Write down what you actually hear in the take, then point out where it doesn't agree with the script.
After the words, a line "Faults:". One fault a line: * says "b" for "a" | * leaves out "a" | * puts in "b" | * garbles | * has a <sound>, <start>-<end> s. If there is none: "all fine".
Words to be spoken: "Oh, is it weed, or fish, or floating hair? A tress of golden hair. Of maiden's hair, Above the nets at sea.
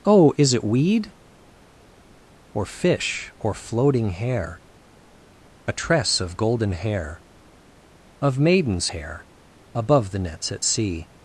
"Oh, is it weed, or fish, or floating hair? A tress of golden hair. Of maiden's hair, Above the nets at sea.
Faults:
all fine